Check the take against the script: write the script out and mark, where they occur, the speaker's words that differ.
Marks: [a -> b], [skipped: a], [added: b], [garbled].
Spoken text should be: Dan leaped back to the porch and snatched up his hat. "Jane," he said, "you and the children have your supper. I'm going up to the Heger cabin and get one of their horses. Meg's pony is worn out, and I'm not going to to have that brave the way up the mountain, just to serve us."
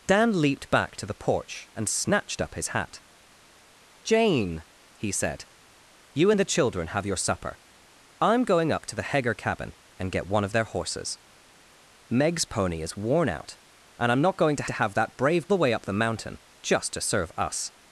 Dan leaped back to the porch and snatched up his hat. "Jane," he said, "you and the children have your supper. I'm going up to the Heger cabin and get one of their horses. Meg's pony is worn out, and I'm not going to to have that brave the way up the mountain, just to serve us."